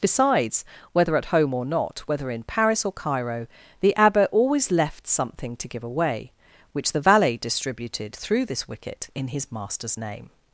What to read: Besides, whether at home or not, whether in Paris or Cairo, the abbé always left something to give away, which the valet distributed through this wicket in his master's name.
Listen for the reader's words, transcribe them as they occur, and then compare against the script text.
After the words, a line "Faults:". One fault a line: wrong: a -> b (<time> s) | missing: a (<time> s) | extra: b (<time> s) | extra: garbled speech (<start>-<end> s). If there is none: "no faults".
Besides, whether at home or not, whether in Paris or Cairo, the abbé always left something to give away, which the valet distributed through this wicket in his master's name.
Faults:
no faults